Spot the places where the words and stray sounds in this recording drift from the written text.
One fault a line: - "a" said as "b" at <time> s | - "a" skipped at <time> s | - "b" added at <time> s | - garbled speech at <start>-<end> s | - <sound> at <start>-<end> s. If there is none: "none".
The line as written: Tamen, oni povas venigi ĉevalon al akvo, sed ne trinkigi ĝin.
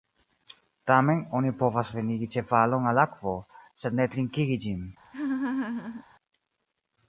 - laugh at 5.0-6.0 s